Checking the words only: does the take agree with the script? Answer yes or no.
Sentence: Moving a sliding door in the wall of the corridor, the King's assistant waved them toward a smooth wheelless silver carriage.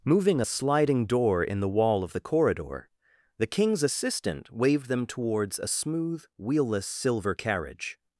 no